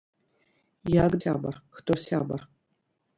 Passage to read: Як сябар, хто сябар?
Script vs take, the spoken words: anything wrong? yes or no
no